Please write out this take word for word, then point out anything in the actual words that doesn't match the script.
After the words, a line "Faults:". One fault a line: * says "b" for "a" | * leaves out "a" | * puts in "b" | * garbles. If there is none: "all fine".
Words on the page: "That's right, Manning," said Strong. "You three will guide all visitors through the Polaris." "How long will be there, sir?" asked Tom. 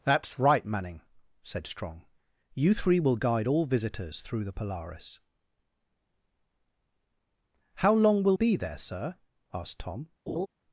"That's right, Manning," said Strong. "You three will guide all visitors through the Polaris." "How long will be there, sir?" asked Tom.
Faults:
all fine